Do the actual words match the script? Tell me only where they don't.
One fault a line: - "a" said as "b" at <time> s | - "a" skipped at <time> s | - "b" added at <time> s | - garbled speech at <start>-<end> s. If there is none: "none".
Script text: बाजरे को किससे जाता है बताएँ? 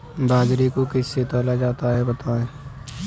- "तौला" added at 1.2 s